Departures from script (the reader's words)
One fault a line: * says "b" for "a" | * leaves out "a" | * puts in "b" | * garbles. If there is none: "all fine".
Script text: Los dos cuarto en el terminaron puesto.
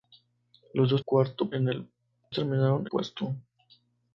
all fine